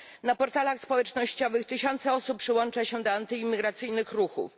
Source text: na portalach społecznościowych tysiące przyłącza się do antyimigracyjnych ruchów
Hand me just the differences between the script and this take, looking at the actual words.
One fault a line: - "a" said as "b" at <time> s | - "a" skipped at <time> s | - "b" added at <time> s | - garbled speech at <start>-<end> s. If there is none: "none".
- "osób" added at 2.1 s